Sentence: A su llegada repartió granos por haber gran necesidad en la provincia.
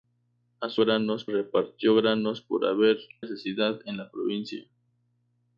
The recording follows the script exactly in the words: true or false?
false